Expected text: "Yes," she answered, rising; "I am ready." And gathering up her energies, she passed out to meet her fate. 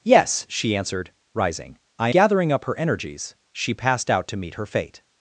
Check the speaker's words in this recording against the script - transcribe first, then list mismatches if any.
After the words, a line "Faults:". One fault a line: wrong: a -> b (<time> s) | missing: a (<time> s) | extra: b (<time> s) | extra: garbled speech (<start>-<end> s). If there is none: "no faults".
"Yes," she answered, rising; "I gathering up her energies, she passed out to meet her fate.
Faults:
missing: am ready And (2.1 s)